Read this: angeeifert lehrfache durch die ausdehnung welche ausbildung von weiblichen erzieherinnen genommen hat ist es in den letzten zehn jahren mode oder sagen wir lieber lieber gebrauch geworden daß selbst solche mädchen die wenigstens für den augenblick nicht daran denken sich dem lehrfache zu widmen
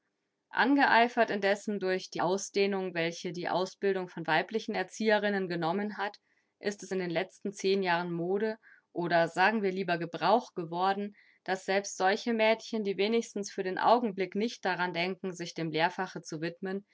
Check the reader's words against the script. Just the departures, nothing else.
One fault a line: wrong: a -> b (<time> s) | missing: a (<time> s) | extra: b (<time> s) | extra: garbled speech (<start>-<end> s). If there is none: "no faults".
wrong: lehrfache -> indessen (1.3 s)
extra: die (3.3 s)
missing: lieber (10.0 s)